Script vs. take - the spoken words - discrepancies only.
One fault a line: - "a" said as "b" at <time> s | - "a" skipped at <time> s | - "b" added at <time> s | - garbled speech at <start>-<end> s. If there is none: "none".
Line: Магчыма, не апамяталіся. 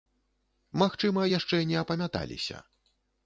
- "яшчэ" added at 1.4 s